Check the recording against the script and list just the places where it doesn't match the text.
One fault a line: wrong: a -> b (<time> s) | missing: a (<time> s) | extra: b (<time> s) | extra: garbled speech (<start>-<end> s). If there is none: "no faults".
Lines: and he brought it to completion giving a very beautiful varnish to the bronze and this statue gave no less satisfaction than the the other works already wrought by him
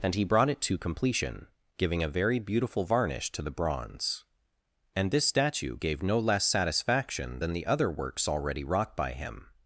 missing: the (7.6 s)